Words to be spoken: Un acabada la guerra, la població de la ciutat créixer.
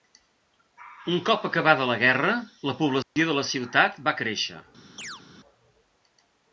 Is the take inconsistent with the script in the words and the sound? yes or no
yes